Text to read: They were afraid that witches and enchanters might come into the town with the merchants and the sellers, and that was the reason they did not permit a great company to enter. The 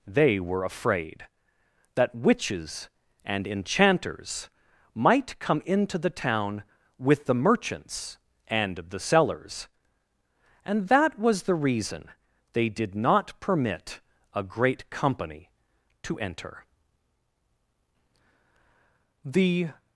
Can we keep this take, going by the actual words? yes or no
yes